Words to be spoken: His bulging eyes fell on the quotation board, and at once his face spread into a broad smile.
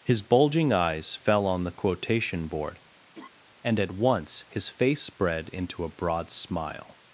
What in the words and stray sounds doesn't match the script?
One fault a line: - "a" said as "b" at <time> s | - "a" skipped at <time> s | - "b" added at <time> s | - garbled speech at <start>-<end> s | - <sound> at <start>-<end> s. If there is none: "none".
- laugh at 3.1-3.3 s